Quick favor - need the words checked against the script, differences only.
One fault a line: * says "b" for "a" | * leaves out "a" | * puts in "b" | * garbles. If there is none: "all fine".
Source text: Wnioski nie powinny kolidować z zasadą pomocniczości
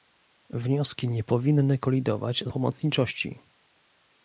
* leaves out "zasadą"